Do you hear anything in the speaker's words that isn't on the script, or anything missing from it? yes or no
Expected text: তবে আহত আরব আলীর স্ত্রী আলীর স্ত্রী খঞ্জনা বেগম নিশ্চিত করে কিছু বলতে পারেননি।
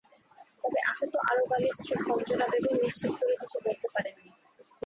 yes